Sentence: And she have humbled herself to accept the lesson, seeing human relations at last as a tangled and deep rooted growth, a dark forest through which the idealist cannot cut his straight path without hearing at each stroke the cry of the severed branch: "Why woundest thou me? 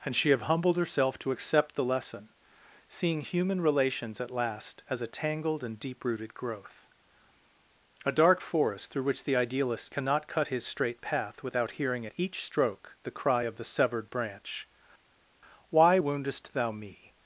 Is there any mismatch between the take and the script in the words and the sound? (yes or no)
no